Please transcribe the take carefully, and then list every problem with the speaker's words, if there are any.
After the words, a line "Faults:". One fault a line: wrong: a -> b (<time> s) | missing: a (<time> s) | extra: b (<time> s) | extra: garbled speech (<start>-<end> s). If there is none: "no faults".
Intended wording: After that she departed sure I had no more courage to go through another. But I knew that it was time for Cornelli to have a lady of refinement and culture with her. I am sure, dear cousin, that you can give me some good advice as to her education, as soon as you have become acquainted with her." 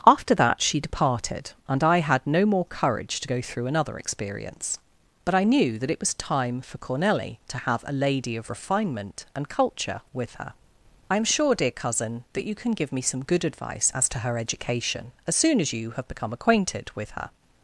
After that she departed and I had no more courage to go through another experience. But I knew that it was time for Cornelli to have a lady of refinement and culture with her. I am sure, dear cousin, that you can give me some good advice as to her education, as soon as you have become acquainted with her."
Faults:
wrong: sure -> and (1.7 s)
extra: experience (4.0 s)